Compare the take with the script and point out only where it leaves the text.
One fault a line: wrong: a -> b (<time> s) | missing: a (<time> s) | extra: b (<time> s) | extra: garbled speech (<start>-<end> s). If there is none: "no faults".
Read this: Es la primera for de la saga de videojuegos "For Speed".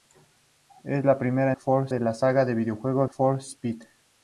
no faults